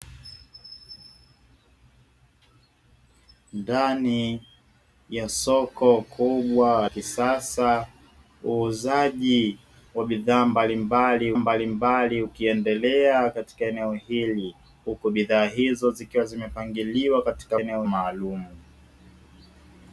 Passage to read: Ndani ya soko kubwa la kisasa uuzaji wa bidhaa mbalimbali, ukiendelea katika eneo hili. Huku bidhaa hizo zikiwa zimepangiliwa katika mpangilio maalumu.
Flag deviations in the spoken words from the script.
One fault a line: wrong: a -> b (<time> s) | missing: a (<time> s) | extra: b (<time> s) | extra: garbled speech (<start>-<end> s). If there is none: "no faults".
missing: la (6.9 s)
extra: mbalimbali (11.3 s)
wrong: mpangilio -> eneo (17.6 s)